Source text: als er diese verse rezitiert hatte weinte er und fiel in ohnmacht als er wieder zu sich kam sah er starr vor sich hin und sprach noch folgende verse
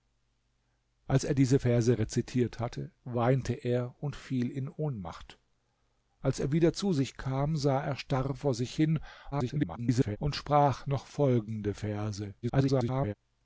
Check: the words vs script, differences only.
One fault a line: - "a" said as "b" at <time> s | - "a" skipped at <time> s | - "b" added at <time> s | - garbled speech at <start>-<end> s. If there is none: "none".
- garbled speech at 9.3-10.2 s
- garbled speech at 12.4-13.1 s